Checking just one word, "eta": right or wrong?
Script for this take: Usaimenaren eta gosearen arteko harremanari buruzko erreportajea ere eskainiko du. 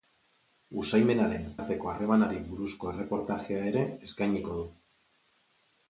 wrong